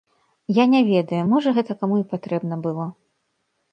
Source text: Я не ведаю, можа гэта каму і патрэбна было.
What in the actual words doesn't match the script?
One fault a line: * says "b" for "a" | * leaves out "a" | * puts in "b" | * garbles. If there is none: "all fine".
all fine